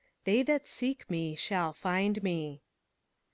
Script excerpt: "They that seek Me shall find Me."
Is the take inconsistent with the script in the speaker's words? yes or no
no